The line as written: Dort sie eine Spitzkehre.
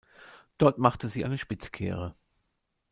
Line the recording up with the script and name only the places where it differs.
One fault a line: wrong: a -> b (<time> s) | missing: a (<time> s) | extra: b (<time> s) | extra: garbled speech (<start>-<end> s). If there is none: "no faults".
extra: machte (0.8 s)